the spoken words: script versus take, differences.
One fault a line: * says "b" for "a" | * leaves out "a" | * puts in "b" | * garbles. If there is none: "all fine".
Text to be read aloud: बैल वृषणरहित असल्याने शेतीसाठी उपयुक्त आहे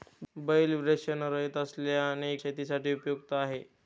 all fine